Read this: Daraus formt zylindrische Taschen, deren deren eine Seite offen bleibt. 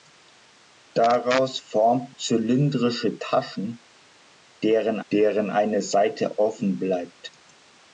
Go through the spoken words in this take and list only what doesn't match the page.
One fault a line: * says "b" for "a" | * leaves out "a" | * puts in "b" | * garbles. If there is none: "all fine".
all fine